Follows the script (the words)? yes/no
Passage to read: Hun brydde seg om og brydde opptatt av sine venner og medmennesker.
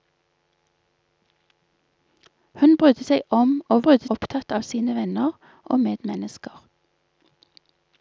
yes